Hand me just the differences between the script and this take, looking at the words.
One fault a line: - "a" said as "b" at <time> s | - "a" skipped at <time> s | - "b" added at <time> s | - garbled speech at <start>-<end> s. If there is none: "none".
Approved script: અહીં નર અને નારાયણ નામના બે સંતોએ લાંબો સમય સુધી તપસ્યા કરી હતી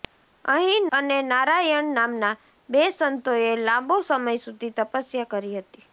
- "નર" skipped at 0.9 s